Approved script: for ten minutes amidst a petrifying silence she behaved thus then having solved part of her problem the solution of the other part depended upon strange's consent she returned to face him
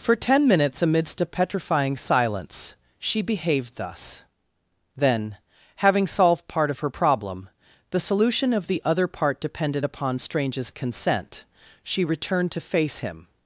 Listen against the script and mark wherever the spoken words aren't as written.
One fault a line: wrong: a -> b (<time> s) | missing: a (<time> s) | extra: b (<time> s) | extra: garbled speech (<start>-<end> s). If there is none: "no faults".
no faults